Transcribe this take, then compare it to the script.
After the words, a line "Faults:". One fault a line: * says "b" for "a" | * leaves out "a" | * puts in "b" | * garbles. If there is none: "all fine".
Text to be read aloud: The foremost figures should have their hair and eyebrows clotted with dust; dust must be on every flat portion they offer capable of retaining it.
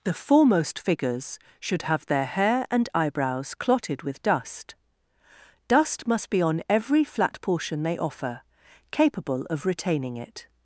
The foremost figures should have their hair and eyebrows clotted with dust; dust must be on every flat portion they offer capable of retaining it.
Faults:
all fine